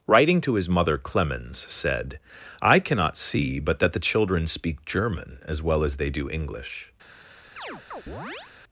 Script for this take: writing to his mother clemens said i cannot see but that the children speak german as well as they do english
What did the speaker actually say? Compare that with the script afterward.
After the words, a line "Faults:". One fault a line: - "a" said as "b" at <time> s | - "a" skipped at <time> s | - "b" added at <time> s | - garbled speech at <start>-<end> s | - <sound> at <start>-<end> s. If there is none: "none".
writing to his mother clemens said i cannot see but that the children speak german as well as they do english
Faults:
- chirp at 7.6-8.5 s